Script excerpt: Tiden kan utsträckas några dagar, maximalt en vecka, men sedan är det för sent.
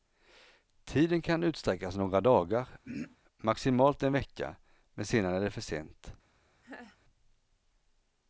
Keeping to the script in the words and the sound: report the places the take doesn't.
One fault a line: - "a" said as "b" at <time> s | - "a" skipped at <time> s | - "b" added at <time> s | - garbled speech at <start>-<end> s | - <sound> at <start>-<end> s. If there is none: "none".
- throat clearing at 2.8-3.2 s
- laugh at 6.6-7.0 s